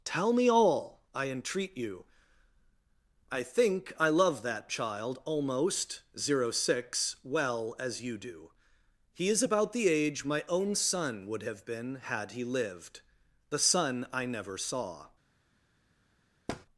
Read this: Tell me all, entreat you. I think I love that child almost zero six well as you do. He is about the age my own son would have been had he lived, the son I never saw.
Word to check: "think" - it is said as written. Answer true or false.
true